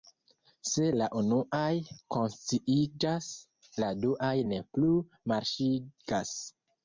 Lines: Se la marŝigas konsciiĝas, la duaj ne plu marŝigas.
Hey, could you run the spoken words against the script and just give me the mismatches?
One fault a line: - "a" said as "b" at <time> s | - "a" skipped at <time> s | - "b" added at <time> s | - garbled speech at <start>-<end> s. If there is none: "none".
- "marŝigas" said as "unuaj" at 1.2 s